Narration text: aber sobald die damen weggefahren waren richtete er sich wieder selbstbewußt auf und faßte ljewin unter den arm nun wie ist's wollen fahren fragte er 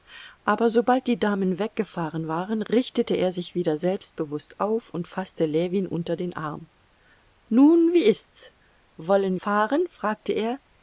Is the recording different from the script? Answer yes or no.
no